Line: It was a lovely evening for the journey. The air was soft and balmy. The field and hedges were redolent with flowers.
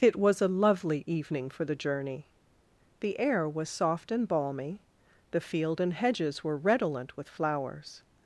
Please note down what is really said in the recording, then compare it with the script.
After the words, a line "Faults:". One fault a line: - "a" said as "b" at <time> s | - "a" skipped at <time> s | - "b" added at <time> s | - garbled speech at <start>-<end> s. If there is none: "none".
It was a lovely evening for the journey. The air was soft and balmy. The field and hedges were redolent with flowers.
Faults:
none